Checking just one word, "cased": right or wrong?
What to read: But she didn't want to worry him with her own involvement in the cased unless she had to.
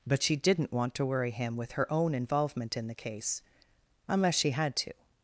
wrong